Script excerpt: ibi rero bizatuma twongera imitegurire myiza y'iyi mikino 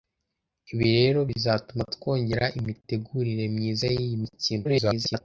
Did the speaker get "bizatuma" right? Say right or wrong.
right